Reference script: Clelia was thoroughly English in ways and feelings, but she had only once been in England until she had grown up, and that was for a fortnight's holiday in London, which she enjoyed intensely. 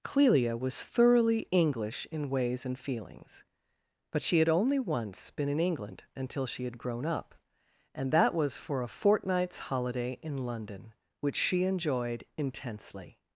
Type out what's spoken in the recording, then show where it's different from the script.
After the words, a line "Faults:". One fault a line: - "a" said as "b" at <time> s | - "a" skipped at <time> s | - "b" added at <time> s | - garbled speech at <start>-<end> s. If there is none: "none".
Clelia was thoroughly English in ways and feelings, but she had only once been in England until she had grown up, and that was for a fortnight's holiday in London, which she enjoyed intensely.
Faults:
none